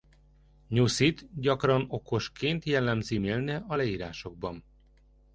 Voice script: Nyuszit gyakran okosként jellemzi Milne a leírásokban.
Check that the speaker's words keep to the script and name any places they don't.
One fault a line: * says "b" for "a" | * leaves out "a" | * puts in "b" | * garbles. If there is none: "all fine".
all fine